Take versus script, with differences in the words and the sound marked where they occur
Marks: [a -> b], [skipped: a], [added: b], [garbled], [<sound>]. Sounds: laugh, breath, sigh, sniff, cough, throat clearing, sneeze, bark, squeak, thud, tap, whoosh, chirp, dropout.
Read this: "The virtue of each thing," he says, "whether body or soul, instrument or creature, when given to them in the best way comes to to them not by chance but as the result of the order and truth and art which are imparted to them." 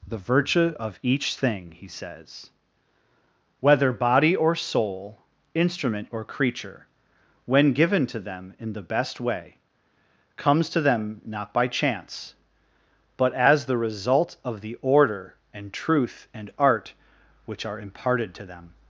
"The virtue of each thing," he says, "whether body or soul, instrument or creature, when given to them in the best way comes to [skipped: to] them not by chance but as the result of the order and truth and art which are imparted to them."